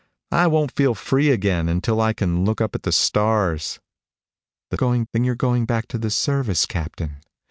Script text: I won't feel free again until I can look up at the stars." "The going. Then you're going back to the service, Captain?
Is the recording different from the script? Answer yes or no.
no